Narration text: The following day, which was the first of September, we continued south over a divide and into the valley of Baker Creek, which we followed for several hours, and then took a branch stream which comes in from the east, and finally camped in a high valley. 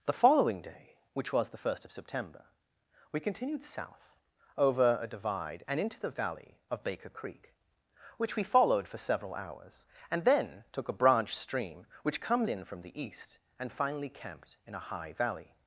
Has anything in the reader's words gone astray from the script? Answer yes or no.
no